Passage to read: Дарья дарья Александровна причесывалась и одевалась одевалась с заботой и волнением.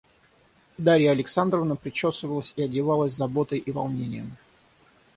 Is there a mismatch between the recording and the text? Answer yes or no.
yes